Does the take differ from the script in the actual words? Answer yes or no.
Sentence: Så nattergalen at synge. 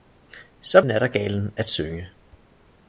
no